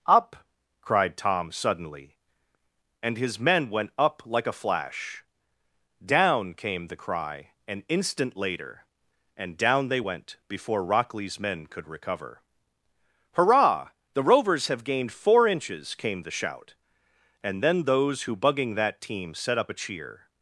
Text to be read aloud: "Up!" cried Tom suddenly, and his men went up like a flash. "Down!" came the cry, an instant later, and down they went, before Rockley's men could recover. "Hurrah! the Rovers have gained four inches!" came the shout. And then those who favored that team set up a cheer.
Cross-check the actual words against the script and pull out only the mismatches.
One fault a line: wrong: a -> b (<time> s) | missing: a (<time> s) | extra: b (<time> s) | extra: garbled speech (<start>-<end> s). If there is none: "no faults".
wrong: favored -> bugging (18.4 s)